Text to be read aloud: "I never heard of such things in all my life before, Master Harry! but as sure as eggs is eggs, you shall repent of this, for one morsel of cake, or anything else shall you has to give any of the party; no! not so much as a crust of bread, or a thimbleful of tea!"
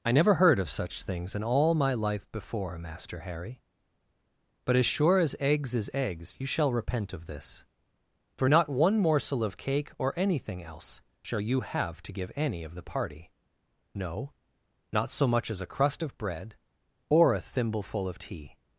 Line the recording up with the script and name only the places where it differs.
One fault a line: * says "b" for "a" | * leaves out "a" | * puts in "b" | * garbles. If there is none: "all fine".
* puts in "not"
* says "have" for "has"